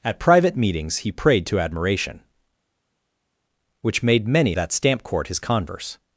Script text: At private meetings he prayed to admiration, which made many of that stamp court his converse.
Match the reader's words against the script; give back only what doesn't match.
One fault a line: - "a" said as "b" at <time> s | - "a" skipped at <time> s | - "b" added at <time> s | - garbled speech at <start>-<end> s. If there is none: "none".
- "of" skipped at 4.5 s